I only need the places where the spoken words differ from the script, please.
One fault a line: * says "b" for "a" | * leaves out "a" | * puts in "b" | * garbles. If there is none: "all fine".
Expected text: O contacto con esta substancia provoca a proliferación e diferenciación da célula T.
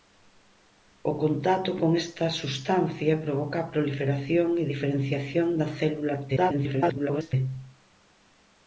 * garbles